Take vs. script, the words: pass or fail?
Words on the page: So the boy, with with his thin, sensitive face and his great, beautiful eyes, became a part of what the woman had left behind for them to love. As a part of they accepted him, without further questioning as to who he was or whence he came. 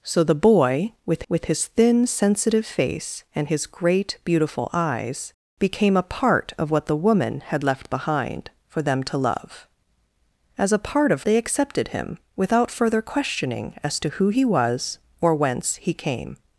pass